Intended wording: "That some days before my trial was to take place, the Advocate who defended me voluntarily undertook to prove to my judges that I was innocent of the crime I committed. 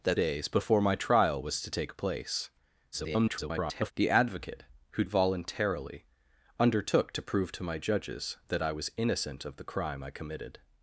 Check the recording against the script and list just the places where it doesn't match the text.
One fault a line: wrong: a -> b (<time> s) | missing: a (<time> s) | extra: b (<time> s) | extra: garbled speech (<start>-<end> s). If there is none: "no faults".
missing: some (0.2 s)
extra: garbled speech (2.9-3.9 s)
missing: defended me (5.0 s)